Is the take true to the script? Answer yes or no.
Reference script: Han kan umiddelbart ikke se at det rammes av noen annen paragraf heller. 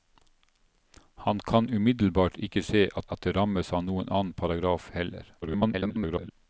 no